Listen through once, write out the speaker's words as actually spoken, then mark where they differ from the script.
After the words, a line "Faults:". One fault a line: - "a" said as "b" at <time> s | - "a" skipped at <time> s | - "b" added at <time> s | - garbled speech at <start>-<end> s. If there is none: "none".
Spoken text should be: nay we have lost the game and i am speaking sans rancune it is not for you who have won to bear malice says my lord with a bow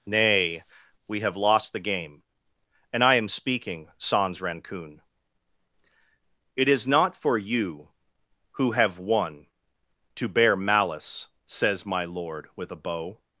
nay we have lost the game and i am speaking sans rancune it is not for you who have won to bear malice says my lord with a bow
Faults:
none